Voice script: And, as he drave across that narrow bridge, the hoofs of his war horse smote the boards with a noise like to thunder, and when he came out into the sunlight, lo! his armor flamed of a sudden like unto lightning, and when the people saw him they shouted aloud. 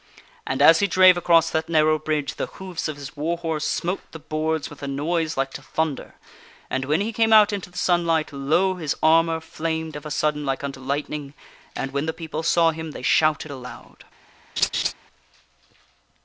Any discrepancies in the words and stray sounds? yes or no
yes